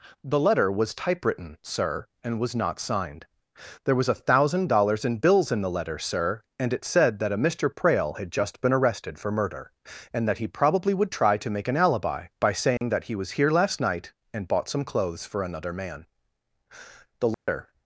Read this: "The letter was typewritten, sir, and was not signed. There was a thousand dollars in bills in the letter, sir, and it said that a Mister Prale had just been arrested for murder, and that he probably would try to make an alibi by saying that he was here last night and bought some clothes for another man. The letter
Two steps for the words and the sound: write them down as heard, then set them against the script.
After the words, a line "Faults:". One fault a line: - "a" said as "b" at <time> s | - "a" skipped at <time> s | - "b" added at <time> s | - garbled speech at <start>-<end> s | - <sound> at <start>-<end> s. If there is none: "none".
"The letter was typewritten, sir, and was not signed. There was a thousand dollars in bills in the letter, sir, and it said that a Mister Prale had just been arrested for murder, and that he probably would try to make an alibi by saying that he was here last night and bought some clothes for another man. The letter
Faults:
- dropout at 12.8-12.8 s
- dropout at 17.3-17.5 s